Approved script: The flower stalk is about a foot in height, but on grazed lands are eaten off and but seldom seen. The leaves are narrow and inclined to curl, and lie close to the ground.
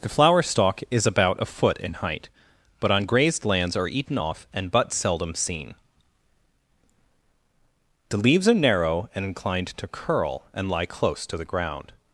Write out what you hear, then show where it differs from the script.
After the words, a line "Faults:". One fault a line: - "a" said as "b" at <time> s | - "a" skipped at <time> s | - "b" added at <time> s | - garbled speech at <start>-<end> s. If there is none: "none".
The flower stalk is about a foot in height, but on grazed lands are eaten off and but seldom seen. The leaves are narrow and inclined to curl, and lie close to the ground.
Faults:
none